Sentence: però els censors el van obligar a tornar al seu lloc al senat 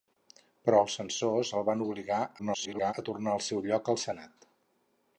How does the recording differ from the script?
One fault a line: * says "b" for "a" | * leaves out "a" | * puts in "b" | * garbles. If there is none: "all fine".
* garbles